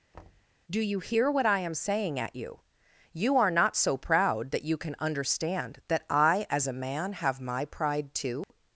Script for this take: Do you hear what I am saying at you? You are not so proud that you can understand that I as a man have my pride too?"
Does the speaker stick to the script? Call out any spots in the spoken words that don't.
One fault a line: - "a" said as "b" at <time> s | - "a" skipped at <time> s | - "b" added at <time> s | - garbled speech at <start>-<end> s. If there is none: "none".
none